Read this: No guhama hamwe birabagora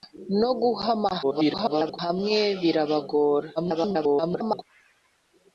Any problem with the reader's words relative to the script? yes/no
yes